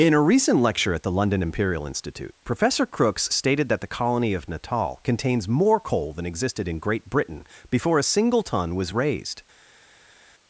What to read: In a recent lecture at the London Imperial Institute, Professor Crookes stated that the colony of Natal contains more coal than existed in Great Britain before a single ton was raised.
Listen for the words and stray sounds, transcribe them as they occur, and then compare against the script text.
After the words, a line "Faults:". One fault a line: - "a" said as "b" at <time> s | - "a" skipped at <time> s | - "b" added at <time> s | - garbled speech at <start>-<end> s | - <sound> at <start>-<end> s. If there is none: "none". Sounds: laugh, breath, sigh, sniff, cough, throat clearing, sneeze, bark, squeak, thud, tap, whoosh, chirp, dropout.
In a recent lecture at the London Imperial Institute, Professor Crookes stated that the colony of Natal contains more coal than existed in Great Britain before a single ton was raised.
Faults:
none